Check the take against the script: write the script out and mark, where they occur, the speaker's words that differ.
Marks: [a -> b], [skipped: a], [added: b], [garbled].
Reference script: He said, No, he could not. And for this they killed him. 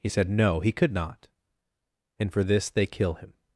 He said, No, he could not. And for this they [killed -> kill] him.